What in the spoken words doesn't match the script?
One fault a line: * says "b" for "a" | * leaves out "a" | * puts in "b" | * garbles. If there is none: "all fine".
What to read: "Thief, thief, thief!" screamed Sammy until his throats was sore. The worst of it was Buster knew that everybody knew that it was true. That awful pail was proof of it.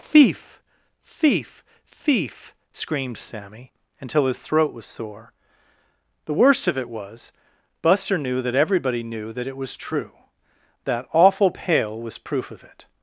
* says "throat" for "throats"